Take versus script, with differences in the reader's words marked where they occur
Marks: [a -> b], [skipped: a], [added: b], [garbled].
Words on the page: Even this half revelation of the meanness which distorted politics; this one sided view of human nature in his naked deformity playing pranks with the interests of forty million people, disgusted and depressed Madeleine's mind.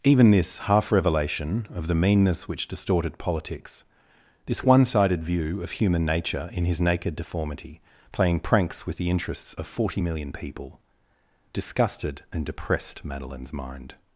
Even this half revelation of the meanness which distorted politics; this one sided view of human nature in his naked deformity playing pranks with the interests of forty million people, disgusted and depressed Madeleine's mind.